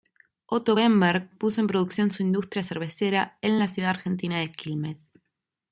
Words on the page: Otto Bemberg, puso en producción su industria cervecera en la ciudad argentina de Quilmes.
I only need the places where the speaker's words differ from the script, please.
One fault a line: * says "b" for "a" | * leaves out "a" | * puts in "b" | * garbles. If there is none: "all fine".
all fine